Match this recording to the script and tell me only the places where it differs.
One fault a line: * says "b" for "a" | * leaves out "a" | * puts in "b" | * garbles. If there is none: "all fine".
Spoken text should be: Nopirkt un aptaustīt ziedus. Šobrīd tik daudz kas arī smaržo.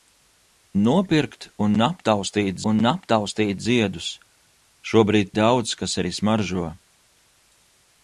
* puts in "un aptaustīt"
* leaves out "tik"